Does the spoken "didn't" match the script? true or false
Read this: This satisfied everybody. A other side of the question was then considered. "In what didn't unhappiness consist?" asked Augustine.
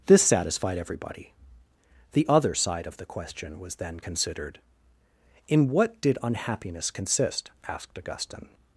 false